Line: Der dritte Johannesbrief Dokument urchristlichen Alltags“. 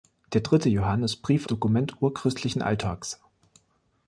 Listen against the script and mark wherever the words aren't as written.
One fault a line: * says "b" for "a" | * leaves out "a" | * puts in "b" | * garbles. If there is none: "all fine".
all fine